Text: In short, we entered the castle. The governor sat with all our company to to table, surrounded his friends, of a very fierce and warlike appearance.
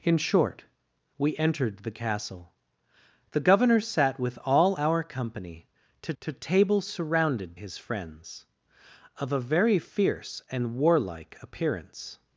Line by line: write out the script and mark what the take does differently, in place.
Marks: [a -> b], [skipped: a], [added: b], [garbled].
In short, we entered the castle. The governor sat with all our company to to table, surrounded his friends, of a very fierce and warlike appearance.